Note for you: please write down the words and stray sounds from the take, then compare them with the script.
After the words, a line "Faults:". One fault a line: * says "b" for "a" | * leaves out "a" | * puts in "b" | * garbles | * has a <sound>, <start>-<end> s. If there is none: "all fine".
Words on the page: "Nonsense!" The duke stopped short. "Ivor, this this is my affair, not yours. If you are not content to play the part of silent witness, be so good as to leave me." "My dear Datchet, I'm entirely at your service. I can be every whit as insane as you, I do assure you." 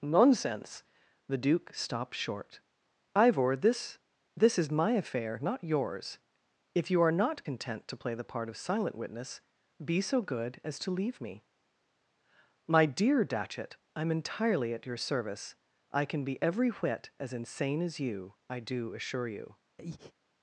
"Nonsense!" The duke stopped short. "Ivor, this this is my affair, not yours. If you are not content to play the part of silent witness, be so good as to leave me." "My dear Datchet, I'm entirely at your service. I can be every whit as insane as you, I do assure you."
Faults:
* has a breath, 19.8-20.1 s